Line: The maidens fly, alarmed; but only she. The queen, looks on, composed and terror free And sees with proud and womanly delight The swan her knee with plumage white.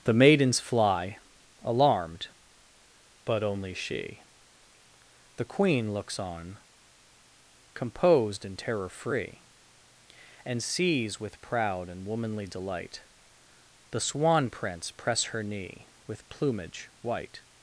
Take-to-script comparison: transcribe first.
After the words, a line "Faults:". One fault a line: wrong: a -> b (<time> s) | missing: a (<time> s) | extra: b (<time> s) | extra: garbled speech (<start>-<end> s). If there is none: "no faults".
The maidens fly, alarmed; but only she. The queen, looks on, composed and terror free And sees with proud and womanly delight The swan prince press her knee with plumage white.
Faults:
extra: prince press (14.5 s)